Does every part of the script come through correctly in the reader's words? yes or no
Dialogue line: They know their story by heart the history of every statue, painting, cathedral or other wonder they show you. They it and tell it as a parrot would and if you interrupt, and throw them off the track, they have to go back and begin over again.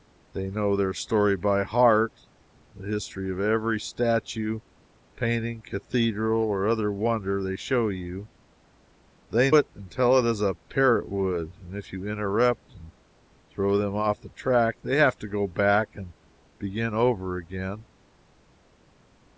yes